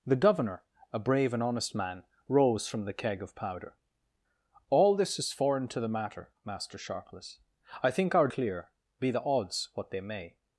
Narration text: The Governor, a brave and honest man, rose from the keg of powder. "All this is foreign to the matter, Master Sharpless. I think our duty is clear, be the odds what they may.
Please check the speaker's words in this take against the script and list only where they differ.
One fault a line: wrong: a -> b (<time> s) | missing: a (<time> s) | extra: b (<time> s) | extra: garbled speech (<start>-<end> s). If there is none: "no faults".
missing: duty is (8.3 s)